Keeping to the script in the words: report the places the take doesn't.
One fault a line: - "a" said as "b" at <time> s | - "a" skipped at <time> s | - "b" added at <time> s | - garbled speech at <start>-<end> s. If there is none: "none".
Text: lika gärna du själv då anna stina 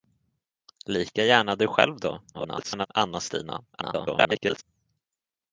- garbled speech at 2.3-2.9 s
- garbled speech at 3.7-4.6 s